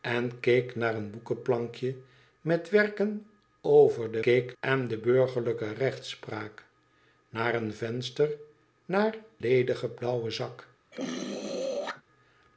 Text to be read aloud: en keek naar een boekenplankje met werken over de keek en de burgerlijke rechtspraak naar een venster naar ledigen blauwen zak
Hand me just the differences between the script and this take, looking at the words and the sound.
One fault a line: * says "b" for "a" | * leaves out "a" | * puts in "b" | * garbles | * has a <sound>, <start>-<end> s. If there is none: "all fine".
* has a throat clearing, 10.9-12.0 s